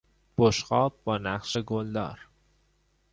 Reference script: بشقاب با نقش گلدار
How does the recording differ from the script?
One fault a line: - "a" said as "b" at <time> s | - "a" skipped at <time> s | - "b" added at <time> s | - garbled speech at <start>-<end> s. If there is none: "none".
none